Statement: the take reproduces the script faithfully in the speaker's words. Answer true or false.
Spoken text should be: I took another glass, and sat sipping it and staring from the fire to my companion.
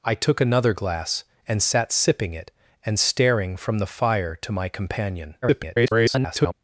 false